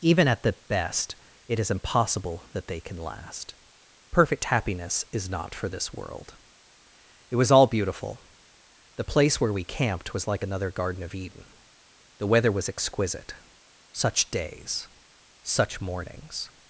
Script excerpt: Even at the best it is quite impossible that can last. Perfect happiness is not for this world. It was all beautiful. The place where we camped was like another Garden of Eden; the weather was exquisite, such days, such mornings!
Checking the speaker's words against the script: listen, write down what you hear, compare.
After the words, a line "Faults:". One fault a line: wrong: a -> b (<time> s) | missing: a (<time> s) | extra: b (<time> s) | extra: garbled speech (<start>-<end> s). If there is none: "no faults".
Even at the best it is impossible that they can last. Perfect happiness is not for this world. It was all beautiful. The place where we camped was like another Garden of Eden; the weather was exquisite, such days, such mornings!
Faults:
missing: quite (1.7 s)
extra: they (2.7 s)